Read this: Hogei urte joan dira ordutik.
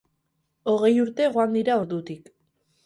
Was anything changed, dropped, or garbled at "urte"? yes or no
no